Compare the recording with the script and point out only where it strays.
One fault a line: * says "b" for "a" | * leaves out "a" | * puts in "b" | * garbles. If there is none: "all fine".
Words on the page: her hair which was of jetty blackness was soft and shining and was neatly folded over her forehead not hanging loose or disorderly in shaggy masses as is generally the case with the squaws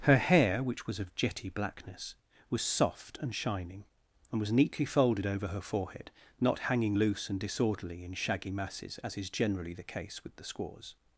* says "and" for "or"